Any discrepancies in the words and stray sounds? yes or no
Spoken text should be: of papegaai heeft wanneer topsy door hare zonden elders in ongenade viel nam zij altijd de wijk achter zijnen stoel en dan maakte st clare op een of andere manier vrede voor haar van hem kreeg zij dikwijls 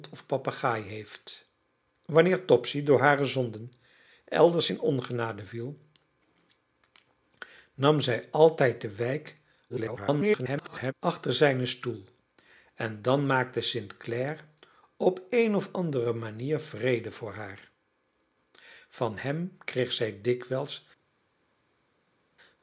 yes